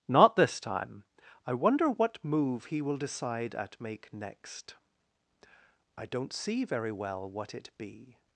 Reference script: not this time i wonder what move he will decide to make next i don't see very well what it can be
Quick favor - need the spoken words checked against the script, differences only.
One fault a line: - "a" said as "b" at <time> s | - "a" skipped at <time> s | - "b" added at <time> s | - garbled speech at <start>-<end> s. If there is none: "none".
- "to" said as "at" at 3.5 s
- "can" skipped at 7.7 s